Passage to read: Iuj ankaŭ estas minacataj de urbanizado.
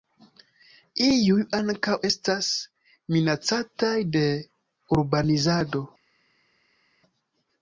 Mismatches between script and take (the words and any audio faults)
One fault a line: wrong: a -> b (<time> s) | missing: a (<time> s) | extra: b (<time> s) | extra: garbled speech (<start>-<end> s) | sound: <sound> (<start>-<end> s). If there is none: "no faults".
no faults